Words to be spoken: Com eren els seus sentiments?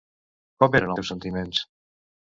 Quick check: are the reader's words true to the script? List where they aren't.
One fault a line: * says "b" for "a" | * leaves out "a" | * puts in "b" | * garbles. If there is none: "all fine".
* leaves out "els"